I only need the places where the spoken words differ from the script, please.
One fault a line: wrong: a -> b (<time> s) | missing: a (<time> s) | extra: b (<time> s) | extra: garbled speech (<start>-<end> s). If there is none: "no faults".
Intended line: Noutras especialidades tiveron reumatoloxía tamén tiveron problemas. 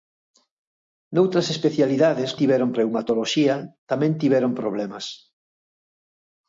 no faults